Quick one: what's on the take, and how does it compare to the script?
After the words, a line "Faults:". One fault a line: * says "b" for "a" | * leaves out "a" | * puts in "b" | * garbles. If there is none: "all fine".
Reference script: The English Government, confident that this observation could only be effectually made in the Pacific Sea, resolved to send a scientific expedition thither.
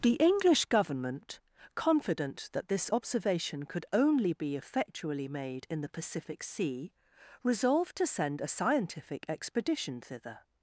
The English Government, confident that this observation could only be effectually made in the Pacific Sea, resolved to send a scientific expedition thither.
Faults:
all fine